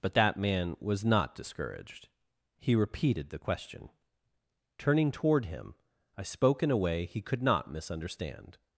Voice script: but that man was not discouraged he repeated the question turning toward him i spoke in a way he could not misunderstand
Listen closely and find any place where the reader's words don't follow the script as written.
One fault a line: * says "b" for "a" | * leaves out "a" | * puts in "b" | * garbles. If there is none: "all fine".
all fine